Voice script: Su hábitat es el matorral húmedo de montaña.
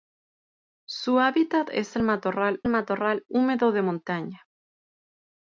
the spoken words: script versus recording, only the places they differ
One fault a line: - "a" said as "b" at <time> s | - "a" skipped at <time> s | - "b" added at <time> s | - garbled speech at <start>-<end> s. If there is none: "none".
- "matorral" added at 2.7 s